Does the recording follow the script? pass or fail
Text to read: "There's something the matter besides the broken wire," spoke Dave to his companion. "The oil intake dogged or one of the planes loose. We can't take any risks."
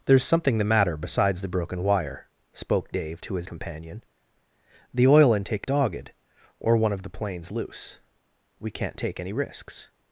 pass